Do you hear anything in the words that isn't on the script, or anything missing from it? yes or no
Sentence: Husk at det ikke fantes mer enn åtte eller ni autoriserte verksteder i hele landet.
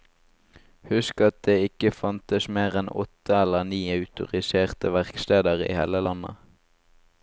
no